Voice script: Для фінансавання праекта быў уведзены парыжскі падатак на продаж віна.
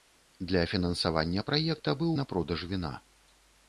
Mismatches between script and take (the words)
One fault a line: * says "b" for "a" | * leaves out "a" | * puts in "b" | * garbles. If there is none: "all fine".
* leaves out "уведзены парыжскі падатак"